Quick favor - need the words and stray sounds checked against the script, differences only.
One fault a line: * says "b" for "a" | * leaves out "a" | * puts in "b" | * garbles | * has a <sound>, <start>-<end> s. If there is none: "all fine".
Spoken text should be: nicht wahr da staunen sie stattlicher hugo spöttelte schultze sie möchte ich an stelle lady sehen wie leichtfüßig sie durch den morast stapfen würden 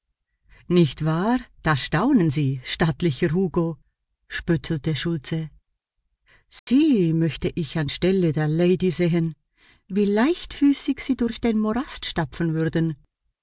* has a dropout, 6.6-6.7 s
* puts in "der"